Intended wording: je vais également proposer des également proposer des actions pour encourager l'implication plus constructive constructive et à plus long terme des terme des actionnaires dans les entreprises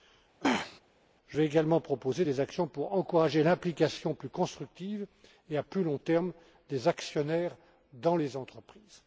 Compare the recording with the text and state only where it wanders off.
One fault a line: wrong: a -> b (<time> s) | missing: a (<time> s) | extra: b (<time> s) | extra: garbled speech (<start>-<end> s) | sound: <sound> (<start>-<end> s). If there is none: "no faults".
sound: throat clearing (0.4-0.8 s)
missing: également proposer des (2.4 s)
missing: constructive (5.1 s)
missing: terme des (6.9 s)